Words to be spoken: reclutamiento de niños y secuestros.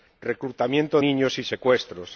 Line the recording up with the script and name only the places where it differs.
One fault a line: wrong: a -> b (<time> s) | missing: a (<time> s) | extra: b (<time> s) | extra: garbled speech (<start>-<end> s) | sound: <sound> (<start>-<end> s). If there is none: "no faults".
missing: de (1.0 s)